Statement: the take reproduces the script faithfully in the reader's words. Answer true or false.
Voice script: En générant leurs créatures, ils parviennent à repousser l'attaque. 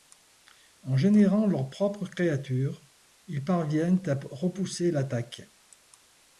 false